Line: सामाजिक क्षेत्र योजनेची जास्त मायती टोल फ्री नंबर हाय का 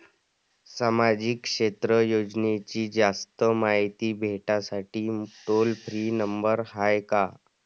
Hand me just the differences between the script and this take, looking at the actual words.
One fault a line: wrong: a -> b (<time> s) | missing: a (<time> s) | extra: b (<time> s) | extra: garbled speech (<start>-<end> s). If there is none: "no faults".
extra: भेटासाठी (4.2 s)